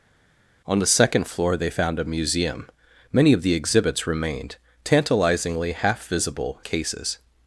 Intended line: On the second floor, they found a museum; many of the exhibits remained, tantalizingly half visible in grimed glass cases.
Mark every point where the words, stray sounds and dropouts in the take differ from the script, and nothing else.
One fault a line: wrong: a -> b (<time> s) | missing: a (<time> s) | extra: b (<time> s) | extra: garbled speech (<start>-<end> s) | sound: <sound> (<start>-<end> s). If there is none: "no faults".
missing: in grimed glass (6.6 s)